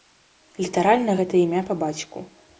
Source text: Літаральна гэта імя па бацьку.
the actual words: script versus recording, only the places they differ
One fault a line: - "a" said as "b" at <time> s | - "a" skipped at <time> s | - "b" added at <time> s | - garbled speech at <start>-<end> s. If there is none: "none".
none